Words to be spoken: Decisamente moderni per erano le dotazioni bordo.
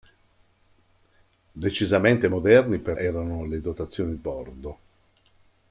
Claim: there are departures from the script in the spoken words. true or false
false